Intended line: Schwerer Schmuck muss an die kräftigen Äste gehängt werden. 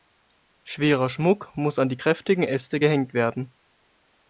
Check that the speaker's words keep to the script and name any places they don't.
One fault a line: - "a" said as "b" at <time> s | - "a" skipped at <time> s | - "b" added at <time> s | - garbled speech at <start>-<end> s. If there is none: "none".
none